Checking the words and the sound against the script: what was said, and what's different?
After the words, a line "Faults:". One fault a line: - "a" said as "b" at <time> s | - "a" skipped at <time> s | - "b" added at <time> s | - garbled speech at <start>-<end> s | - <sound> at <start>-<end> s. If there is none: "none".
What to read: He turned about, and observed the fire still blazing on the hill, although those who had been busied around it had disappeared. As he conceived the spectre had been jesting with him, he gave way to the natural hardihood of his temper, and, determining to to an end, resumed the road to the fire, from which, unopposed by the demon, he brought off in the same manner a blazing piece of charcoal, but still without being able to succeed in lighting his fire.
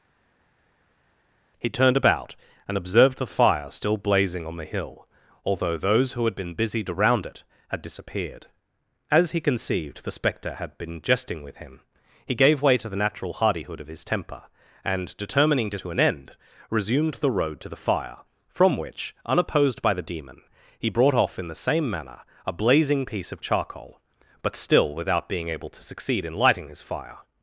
He turned about, and observed the fire still blazing on the hill, although those who had been busied around it had disappeared. As he conceived the spectre had been jesting with him, he gave way to the natural hardihood of his temper, and, determining to to an end, resumed the road to the fire, from which, unopposed by the demon, he brought off in the same manner a blazing piece of charcoal, but still without being able to succeed in lighting his fire.
Faults:
none